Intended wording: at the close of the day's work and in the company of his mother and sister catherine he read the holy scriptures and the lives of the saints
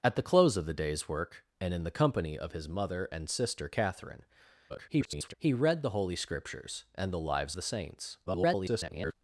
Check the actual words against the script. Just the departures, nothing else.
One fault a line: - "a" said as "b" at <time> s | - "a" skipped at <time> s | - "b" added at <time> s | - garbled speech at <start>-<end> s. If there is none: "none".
- garbled speech at 4.7-5.3 s
- "of" skipped at 7.6 s
- garbled speech at 8.3-9.1 s